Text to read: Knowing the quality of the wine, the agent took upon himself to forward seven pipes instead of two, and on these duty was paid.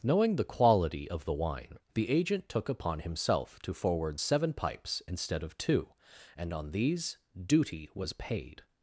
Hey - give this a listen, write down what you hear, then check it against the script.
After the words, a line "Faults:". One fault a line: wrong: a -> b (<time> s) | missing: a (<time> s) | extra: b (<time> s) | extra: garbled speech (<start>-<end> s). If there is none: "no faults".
Knowing the quality of the wine, the agent took upon himself to forward seven pipes instead of two, and on these duty was paid.
Faults:
no faults